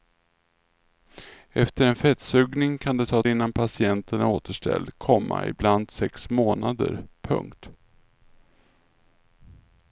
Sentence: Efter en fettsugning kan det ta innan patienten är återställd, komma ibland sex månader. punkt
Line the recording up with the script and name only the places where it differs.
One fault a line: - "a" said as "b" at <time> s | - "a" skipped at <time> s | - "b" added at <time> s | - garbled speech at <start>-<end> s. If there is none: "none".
none